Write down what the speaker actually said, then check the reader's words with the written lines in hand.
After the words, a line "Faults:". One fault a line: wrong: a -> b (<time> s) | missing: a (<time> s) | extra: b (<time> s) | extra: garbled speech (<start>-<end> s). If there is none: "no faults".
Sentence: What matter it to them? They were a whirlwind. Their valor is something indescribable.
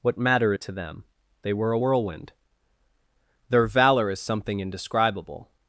What matter it to them? They were a whirlwind. Their valor is something indescribable.
Faults:
no faults